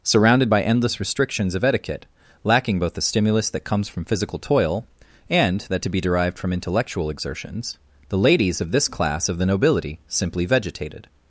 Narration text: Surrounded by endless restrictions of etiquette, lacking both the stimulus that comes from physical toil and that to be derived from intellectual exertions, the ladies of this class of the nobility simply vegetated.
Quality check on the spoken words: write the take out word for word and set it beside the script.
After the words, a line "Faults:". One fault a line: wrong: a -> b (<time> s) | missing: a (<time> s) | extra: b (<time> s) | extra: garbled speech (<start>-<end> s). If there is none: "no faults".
Surrounded by endless restrictions of etiquette, lacking both the stimulus that comes from physical toil and that to be derived from intellectual exertions, the ladies of this class of the nobility simply vegetated.
Faults:
no faults